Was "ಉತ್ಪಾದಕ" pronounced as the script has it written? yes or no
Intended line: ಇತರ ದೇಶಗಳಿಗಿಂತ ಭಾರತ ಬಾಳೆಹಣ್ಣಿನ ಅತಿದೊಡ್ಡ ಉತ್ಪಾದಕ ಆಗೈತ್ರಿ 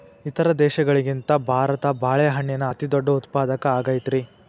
yes